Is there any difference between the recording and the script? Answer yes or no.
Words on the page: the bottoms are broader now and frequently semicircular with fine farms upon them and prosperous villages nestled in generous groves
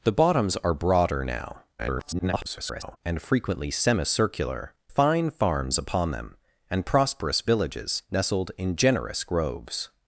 yes